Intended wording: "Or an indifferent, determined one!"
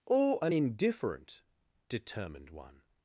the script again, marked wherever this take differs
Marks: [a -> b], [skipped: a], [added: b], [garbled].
"Or an indifferent, determined one!"